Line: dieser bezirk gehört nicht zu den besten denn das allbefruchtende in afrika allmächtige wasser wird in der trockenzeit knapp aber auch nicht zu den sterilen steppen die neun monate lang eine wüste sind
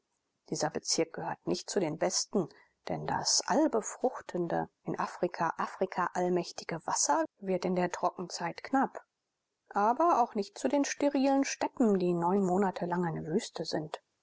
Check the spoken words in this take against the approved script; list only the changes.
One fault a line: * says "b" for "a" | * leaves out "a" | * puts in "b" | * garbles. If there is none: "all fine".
* puts in "afrika"